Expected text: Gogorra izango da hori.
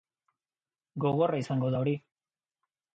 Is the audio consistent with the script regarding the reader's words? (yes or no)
yes